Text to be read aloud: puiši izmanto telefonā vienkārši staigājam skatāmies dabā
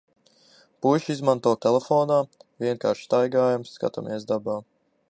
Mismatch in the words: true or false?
false